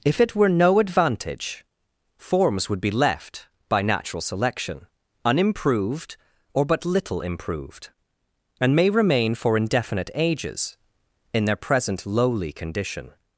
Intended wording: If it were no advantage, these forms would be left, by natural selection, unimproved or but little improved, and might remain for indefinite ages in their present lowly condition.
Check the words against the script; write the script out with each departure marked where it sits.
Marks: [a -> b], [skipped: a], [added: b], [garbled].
If it were no advantage, [skipped: these] forms would be left, by natural selection, unimproved or but little improved, and [might -> may] remain for indefinite ages in their present lowly condition.